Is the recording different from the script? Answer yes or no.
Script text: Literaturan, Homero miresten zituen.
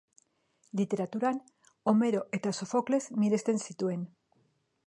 yes